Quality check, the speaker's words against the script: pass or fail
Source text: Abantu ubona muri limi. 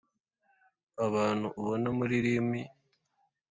pass